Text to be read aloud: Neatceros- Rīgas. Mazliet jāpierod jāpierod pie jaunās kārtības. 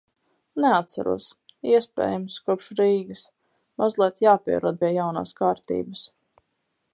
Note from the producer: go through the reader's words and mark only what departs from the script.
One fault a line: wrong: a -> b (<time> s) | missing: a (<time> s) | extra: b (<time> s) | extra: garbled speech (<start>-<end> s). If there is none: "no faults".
extra: iespējams kopš (1.7 s)
missing: jāpierod (4.8 s)